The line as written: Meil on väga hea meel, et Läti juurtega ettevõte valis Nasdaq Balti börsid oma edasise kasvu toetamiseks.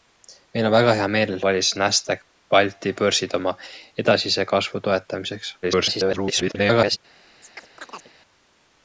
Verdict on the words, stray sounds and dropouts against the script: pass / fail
fail